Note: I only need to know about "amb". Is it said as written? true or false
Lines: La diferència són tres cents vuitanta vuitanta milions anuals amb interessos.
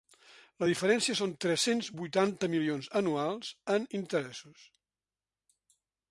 false